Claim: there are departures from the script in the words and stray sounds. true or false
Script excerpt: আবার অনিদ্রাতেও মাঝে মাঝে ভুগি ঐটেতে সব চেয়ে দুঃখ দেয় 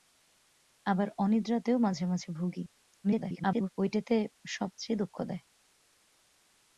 true